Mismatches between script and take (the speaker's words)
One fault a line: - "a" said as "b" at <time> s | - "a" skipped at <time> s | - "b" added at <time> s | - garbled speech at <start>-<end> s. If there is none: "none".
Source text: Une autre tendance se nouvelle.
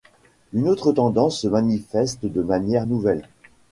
- "manifeste de manière" added at 1.5 s